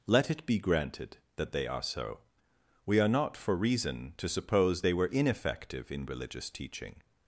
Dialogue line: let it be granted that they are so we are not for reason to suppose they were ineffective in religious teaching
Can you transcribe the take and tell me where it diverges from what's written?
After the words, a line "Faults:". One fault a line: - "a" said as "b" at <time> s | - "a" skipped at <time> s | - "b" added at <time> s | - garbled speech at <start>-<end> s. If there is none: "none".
let it be granted that they are so we are not for reason to suppose they were ineffective in religious teaching
Faults:
none